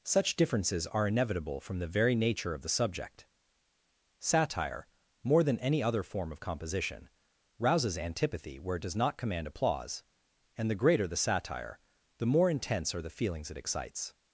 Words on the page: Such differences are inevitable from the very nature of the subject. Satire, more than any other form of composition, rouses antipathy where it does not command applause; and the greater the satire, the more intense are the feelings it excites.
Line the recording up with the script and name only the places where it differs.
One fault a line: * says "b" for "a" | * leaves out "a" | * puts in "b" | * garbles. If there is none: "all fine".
all fine